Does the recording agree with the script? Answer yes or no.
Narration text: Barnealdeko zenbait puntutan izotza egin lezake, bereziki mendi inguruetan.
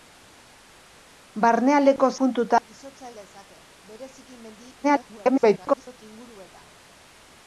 no